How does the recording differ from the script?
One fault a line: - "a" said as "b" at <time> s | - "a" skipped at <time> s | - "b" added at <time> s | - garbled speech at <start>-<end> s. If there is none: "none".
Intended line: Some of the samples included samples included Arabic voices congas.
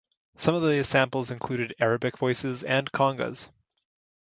- "samples included" skipped at 1.8 s
- "and" added at 2.6 s